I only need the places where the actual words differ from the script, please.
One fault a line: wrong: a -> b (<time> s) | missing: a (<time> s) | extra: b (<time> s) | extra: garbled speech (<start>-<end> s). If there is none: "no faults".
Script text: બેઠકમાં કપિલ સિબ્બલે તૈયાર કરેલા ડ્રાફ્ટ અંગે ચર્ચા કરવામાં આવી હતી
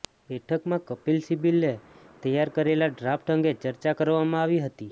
no faults